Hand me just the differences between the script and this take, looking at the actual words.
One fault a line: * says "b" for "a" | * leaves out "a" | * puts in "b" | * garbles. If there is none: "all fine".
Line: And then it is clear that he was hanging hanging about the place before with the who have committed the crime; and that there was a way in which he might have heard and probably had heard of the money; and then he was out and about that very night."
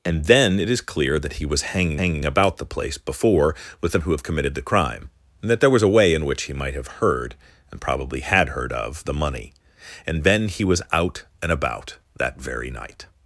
all fine